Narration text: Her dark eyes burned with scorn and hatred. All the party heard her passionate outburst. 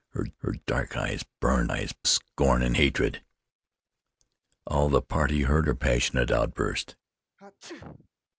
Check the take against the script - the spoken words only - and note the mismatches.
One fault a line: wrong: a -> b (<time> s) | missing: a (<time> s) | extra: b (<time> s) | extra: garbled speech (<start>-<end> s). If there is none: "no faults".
extra: her (0.4 s)
wrong: with -> eyes (1.7 s)